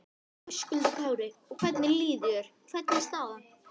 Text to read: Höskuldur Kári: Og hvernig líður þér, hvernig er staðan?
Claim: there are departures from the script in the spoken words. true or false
false